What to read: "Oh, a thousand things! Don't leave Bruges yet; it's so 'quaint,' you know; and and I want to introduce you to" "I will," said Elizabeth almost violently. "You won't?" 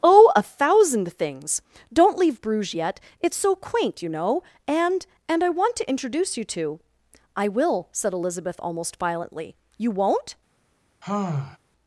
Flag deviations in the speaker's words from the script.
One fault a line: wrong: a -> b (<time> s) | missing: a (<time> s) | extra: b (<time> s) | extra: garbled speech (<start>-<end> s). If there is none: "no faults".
no faults